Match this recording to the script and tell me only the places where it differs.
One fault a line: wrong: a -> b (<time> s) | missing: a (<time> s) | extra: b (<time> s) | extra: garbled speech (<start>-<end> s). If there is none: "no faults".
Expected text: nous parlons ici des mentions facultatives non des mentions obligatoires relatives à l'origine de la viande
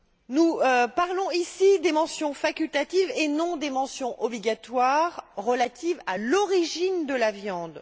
extra: et (3.2 s)